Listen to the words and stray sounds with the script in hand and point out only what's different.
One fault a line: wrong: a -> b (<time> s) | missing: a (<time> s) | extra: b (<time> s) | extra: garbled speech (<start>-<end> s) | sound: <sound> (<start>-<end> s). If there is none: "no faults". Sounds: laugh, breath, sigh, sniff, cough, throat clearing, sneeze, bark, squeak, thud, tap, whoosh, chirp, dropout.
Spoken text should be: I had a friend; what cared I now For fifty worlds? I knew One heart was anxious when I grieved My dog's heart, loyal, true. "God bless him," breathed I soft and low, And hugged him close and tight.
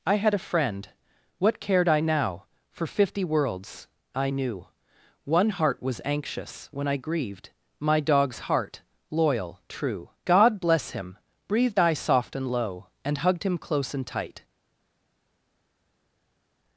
no faults